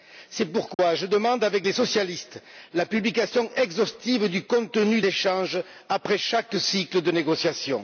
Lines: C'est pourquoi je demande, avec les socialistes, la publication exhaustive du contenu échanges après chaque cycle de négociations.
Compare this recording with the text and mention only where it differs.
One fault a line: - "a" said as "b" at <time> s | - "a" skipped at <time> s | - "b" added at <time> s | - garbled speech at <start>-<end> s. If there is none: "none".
none